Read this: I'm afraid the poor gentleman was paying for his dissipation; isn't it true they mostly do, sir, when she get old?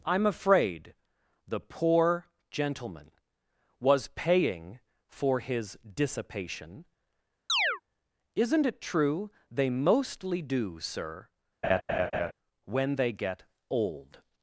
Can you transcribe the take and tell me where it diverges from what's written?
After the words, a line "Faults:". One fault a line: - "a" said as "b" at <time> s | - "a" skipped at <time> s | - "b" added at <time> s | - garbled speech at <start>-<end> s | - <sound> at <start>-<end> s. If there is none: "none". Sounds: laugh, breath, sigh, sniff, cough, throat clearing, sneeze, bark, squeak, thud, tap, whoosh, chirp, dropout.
I'm afraid the poor gentleman was paying for his dissipation; isn't it true they mostly do, sir, when they get old?
Faults:
- chirp at 7.5-7.8 s
- laugh at 11.6-12.3 s
- "she" said as "they" at 12.9 s